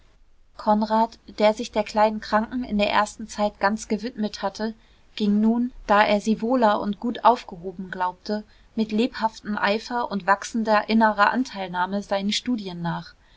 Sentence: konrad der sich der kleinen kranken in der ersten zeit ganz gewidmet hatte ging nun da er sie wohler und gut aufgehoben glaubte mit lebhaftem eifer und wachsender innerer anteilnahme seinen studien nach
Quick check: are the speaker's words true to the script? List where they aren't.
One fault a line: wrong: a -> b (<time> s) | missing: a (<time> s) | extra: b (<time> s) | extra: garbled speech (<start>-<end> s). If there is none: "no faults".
no faults